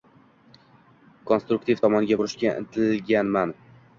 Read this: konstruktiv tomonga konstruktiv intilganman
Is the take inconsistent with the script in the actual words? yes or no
yes